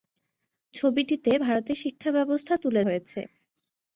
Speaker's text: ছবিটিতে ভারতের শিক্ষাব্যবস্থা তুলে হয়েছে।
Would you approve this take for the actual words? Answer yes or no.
yes